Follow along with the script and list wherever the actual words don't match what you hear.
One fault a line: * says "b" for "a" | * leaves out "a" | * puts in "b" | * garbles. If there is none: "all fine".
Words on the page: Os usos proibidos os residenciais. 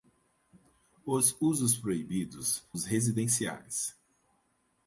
all fine